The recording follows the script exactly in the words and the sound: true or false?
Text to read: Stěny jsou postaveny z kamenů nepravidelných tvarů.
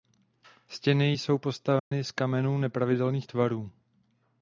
false